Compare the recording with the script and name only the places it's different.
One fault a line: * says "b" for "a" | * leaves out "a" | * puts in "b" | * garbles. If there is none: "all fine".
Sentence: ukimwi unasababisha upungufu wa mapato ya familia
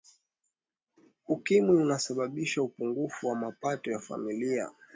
all fine